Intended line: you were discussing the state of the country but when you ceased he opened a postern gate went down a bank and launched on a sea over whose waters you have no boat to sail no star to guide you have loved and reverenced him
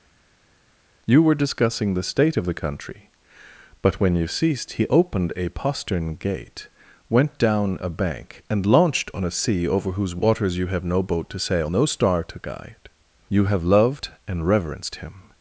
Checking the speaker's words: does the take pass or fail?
pass